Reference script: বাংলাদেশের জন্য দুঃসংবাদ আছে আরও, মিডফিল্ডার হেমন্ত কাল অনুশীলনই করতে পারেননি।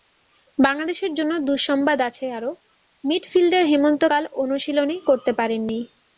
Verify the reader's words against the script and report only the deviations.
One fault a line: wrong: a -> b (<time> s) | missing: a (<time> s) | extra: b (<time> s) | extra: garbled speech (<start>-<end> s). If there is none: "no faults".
no faults